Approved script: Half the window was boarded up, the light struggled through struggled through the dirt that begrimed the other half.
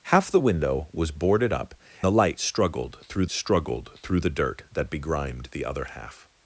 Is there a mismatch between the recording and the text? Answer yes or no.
no